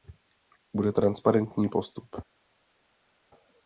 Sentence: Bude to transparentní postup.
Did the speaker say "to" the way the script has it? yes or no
no